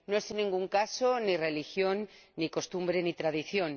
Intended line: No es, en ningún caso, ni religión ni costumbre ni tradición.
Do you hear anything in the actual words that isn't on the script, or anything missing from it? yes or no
no